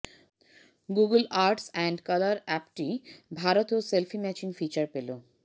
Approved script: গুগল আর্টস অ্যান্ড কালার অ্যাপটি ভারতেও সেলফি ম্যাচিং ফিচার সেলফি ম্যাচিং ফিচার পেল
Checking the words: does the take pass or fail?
fail